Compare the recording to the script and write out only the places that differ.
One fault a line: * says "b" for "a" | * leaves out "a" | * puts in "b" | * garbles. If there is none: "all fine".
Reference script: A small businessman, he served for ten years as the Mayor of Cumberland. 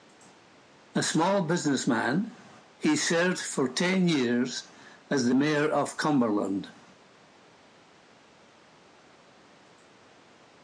all fine